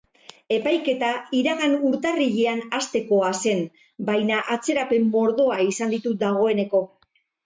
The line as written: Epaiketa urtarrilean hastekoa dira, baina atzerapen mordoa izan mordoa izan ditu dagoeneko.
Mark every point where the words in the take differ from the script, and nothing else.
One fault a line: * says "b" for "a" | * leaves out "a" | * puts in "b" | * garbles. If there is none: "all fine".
* puts in "iragan"
* says "zen" for "dira"
* leaves out "mordoa izan"